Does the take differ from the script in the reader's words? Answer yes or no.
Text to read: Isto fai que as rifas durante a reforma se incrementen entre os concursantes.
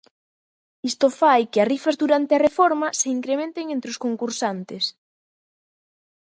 no